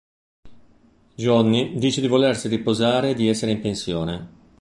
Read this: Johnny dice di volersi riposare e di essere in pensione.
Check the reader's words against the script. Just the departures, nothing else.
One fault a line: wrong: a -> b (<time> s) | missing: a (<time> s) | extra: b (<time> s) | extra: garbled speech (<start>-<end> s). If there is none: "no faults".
no faults